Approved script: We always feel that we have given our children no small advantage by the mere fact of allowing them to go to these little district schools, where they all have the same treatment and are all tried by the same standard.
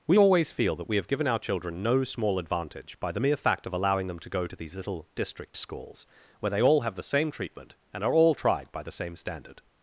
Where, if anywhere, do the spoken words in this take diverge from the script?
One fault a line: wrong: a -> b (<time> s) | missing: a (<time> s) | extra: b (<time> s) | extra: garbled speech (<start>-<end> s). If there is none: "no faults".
no faults